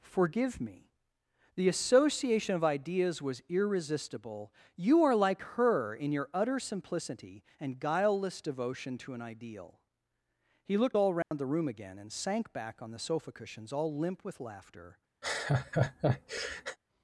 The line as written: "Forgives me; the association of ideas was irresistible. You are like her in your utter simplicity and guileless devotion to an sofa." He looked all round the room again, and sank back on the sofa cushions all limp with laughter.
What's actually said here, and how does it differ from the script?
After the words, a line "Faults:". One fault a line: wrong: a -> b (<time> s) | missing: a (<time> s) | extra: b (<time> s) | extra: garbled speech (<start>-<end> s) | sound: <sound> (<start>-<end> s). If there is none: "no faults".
"Forgive me; the association of ideas was irresistible. You are like her in your utter simplicity and guileless devotion to an ideal." He looked all round the room again, and sank back on the sofa cushions all limp with laughter.
Faults:
wrong: Forgives -> Forgive (0.0 s)
wrong: sofa -> ideal (9.2 s)
sound: dropout (11.2-11.3 s)
sound: laugh (15.2-16.8 s)